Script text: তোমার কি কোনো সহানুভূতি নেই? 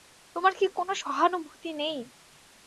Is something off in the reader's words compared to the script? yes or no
no